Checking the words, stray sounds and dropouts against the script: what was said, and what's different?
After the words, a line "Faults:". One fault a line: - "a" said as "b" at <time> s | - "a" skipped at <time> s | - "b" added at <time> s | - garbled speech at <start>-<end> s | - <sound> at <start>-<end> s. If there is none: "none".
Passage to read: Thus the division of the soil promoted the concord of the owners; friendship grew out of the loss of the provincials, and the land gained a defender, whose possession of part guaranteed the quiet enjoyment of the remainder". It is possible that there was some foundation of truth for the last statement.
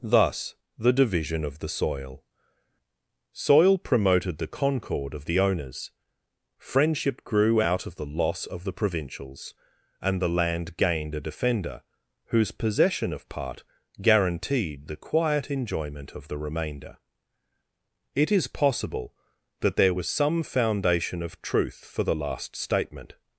Thus the division of the soil soil promoted the concord of the owners; friendship grew out of the loss of the provincials, and the land gained a defender, whose possession of part guaranteed the quiet enjoyment of the remainder". It is possible that there was some foundation of truth for the last statement.
Faults:
- "soil" added at 3.3 s